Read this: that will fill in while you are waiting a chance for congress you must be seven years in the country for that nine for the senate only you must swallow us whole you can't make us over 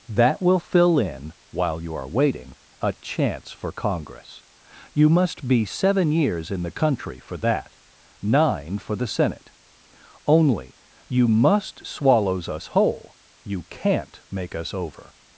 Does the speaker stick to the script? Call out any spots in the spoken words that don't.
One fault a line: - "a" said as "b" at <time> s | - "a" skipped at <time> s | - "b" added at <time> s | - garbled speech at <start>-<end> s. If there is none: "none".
- "swallow" said as "swallows" at 11.9 s